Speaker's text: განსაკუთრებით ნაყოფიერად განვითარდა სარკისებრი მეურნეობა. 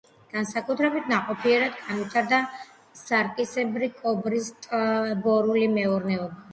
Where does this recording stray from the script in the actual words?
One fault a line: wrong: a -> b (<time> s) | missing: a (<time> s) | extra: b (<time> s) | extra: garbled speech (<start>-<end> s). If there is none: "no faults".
extra: კობრის ტბორული (4.0 s)